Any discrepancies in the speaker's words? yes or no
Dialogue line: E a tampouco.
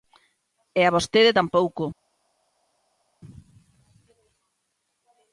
yes